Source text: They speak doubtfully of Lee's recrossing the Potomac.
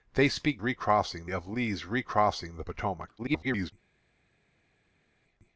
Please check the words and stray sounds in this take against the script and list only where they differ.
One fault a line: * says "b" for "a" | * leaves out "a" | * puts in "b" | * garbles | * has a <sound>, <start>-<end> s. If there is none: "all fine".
* says "recrossing" for "doubtfully"
* garbles